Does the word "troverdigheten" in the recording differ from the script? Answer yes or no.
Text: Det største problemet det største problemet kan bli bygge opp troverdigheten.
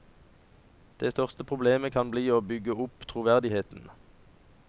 no